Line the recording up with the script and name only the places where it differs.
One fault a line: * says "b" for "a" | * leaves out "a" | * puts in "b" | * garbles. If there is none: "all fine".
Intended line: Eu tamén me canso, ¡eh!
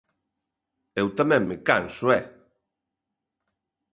all fine